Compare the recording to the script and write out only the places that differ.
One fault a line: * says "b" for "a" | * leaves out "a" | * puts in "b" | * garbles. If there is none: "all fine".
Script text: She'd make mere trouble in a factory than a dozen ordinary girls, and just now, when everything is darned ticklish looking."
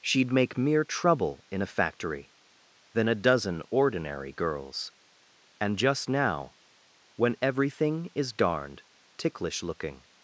all fine